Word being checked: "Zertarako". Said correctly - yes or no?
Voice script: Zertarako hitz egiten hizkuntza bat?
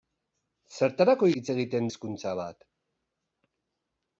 yes